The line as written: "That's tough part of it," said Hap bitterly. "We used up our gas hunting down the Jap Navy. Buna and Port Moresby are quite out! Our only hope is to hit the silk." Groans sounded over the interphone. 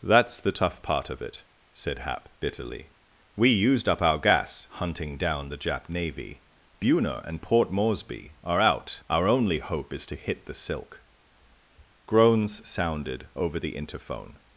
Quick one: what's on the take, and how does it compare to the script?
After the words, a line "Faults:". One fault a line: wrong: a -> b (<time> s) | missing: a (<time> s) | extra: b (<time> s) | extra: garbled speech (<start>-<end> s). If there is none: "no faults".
"That's the tough part of it," said Hap bitterly. "We used up our gas hunting down the Jap Navy. Buna and Port Moresby are out! Our only hope is to hit the silk." Groans sounded over the interphone.
Faults:
extra: the (0.4 s)
missing: quite (8.6 s)